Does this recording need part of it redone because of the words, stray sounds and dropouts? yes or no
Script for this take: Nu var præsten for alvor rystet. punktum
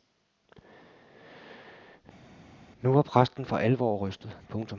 no